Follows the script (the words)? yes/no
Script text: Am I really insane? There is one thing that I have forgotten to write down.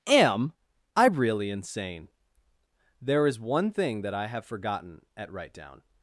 no